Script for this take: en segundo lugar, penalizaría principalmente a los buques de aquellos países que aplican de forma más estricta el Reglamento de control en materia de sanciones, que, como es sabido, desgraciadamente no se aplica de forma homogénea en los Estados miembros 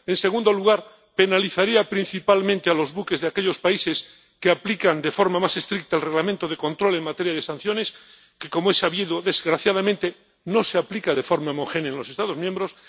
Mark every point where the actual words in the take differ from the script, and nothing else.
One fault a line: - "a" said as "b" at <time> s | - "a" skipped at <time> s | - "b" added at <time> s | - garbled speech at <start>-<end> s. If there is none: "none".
none